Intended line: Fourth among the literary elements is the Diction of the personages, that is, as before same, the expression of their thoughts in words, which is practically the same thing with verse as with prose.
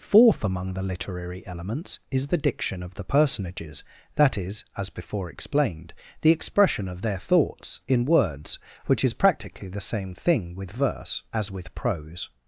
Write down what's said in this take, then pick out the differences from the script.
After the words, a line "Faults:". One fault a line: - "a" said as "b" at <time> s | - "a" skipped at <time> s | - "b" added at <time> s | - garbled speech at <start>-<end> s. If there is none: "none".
Fourth among the literary elements is the Diction of the personages, that is, as before explained, the expression of their thoughts in words, which is practically the same thing with verse as with prose.
Faults:
- "same" said as "explained" at 5.3 s